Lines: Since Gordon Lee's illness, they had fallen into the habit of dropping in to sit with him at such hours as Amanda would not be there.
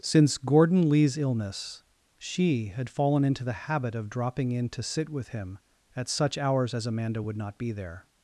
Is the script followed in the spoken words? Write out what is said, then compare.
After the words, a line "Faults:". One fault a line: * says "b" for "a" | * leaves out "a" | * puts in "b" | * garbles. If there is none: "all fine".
Since Gordon Lee's illness, she had fallen into the habit of dropping in to sit with him at such hours as Amanda would not be there.
Faults:
* says "she" for "they"